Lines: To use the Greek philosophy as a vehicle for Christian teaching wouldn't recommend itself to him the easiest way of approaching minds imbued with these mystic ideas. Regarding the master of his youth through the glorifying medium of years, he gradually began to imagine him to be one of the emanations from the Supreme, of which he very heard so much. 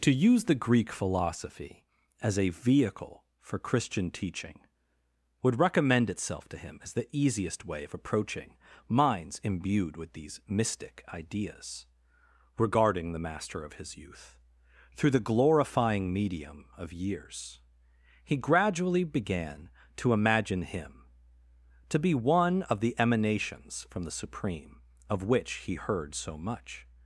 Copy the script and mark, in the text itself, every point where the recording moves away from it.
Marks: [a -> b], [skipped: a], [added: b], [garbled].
To use the Greek philosophy as a vehicle for Christian teaching [wouldn't -> would] recommend itself to him [added: as] the easiest way of approaching minds imbued with these mystic ideas. Regarding the master of his youth through the glorifying medium of years, he gradually began to imagine him to be one of the emanations from the Supreme, of which he [skipped: very] heard so much.